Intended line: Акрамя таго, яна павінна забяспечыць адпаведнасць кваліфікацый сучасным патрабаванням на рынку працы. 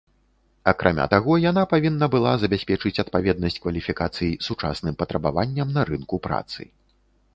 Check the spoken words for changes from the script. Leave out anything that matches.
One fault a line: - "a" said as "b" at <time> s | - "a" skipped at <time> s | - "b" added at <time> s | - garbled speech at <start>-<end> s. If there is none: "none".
- "была" added at 2.1 s